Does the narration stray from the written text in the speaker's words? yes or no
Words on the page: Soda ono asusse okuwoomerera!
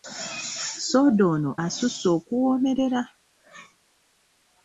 no